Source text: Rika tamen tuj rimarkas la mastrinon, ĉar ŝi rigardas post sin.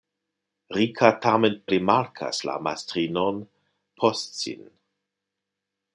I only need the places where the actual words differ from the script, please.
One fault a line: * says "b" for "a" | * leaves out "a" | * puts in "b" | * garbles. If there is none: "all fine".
* leaves out "tuj"
* leaves out "ĉar ŝi rigardas"